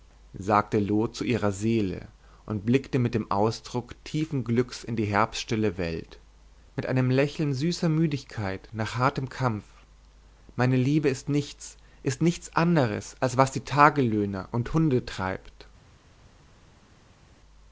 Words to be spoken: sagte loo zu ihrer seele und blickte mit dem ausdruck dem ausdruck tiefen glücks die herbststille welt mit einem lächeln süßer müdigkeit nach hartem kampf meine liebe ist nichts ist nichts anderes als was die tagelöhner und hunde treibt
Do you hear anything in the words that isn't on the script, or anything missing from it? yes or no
yes